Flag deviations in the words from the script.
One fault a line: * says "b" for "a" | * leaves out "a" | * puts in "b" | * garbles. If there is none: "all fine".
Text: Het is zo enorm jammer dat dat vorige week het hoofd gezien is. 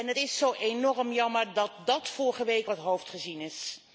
all fine